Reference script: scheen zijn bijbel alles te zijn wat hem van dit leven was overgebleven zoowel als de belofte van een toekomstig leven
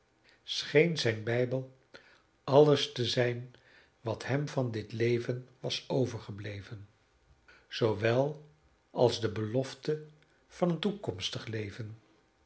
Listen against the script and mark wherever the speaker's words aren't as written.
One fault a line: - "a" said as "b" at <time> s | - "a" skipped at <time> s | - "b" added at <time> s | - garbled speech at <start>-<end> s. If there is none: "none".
none